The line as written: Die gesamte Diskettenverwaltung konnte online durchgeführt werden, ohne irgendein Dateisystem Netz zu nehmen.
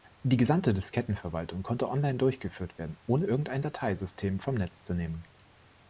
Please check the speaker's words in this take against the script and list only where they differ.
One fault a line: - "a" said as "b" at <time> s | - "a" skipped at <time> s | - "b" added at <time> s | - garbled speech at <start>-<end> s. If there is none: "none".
- "vom" added at 4.4 s